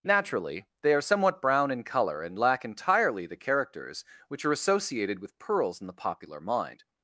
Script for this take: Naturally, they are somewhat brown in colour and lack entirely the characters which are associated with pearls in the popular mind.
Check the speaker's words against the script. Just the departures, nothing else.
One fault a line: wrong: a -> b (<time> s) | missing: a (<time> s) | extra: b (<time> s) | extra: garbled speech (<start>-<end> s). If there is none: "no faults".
no faults